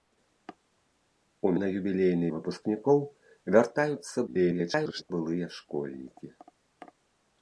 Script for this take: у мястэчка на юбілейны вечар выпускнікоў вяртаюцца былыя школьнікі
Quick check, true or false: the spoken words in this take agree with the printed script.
false